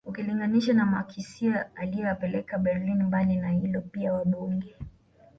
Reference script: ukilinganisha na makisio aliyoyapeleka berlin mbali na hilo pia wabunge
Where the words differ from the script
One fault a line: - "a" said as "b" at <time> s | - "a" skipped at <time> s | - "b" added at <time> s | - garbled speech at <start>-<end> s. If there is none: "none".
none